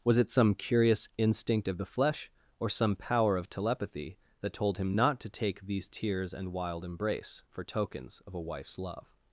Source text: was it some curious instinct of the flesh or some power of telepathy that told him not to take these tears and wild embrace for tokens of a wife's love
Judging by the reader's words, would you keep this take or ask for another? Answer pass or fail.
pass